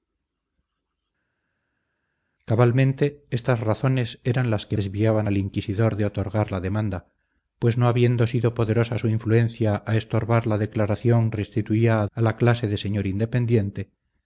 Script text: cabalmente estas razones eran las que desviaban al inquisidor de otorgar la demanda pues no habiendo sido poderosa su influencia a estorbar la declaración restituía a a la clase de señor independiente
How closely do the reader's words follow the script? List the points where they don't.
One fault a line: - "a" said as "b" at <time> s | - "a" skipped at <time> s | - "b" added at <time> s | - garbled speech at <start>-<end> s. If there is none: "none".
none